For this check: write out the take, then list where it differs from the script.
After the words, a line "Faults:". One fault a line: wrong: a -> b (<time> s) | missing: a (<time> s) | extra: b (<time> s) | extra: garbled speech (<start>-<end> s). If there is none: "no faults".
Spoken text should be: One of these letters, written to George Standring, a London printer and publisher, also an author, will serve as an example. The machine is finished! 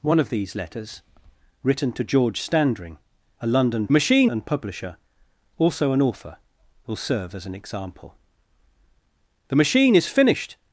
One of these letters, written to George Standring, a London machine and publisher, also an author, will serve as an example. The machine is finished!
Faults:
wrong: printer -> machine (3.9 s)